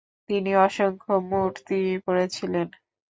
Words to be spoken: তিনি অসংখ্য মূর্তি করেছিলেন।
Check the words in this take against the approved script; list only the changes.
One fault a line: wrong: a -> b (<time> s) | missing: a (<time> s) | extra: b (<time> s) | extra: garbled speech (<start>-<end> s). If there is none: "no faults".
no faults